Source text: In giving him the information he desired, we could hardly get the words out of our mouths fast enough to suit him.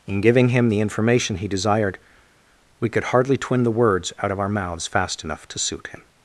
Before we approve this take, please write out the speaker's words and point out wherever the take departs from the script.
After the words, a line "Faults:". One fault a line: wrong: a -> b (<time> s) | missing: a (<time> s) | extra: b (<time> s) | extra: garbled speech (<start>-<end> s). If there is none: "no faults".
In giving him the information he desired, we could hardly twin the words out of our mouths fast enough to suit him.
Faults:
wrong: get -> twin (3.4 s)